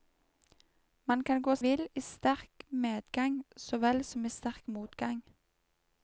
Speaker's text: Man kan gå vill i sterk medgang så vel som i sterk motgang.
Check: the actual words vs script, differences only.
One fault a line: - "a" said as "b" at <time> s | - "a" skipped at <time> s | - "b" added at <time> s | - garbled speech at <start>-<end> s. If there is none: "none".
none